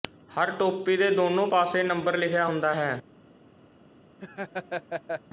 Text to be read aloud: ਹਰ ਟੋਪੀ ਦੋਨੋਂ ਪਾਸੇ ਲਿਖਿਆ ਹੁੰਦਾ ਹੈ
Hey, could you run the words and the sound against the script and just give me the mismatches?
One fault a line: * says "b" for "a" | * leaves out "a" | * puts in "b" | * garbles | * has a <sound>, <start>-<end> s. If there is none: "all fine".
* puts in "ਦੇ"
* puts in "ਨੰਬਰ"
* has a laugh, 4.2-5.2 s